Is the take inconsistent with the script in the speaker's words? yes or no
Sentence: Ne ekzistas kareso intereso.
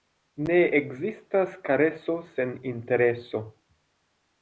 yes